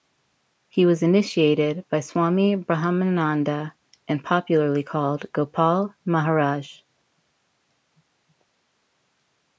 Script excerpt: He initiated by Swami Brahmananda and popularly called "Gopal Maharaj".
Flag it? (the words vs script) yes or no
yes